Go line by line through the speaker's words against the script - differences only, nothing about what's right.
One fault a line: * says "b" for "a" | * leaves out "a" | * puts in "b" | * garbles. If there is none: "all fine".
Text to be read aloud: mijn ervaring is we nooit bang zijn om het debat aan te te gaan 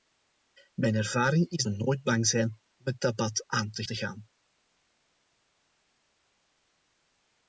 all fine